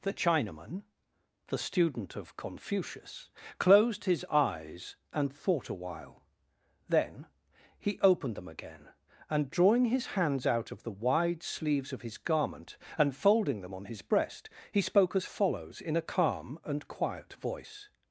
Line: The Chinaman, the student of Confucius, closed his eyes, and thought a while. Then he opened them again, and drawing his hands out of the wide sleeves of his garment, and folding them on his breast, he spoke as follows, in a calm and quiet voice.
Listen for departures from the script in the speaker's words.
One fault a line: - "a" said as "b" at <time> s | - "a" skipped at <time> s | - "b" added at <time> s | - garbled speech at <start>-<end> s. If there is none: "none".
none